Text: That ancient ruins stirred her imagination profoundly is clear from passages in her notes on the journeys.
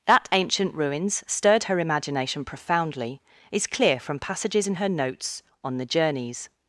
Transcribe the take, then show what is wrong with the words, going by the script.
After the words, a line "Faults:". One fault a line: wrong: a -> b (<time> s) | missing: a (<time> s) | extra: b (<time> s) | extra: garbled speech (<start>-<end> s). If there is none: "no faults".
That ancient ruins stirred her imagination profoundly is clear from passages in her notes on the journeys.
Faults:
no faults